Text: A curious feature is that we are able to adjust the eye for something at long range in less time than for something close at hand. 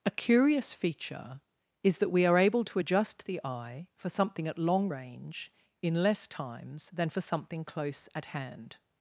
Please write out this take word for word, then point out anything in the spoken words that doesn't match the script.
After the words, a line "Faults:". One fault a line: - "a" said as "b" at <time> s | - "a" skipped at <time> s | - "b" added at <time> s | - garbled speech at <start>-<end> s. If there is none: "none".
A curious feature is that we are able to adjust the eye for something at long range in less times than for something close at hand.
Faults:
- "time" said as "times" at 6.3 s